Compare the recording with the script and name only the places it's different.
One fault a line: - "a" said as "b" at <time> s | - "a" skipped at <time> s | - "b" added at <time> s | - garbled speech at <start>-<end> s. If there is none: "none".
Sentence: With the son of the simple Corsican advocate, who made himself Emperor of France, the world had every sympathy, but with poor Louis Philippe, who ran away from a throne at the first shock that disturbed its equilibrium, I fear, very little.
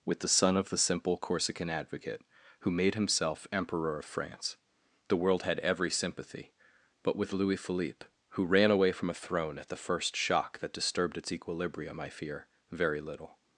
- "poor" skipped at 7.3 s